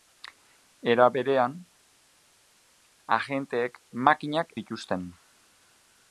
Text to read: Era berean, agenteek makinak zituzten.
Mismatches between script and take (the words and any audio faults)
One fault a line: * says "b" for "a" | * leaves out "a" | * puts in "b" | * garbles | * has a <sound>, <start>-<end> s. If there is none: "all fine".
all fine